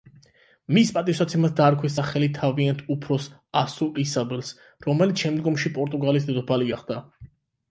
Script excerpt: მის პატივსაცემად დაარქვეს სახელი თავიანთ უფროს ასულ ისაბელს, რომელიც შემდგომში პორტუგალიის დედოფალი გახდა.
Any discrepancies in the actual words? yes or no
no